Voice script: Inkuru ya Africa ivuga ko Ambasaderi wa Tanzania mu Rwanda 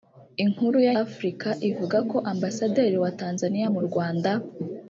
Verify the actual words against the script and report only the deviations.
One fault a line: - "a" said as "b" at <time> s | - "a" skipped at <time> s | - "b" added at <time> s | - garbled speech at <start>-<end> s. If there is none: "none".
none